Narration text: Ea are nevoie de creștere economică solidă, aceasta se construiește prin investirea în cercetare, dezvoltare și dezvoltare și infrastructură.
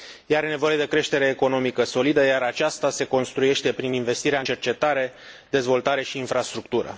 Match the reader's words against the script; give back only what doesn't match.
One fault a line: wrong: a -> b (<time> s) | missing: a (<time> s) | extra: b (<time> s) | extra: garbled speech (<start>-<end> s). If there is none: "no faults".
extra: iar (2.2 s)
missing: dezvoltare și (6.2 s)